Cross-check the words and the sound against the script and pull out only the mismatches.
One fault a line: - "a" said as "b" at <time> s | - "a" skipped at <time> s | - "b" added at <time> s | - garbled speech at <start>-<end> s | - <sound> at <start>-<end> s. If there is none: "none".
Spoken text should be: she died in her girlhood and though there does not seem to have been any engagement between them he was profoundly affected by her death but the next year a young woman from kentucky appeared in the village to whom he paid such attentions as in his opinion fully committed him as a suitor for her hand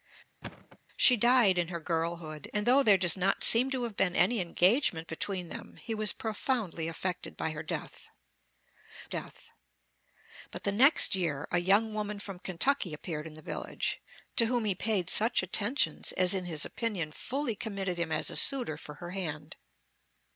- thud at 0.4-0.8 s
- "death" added at 9.1 s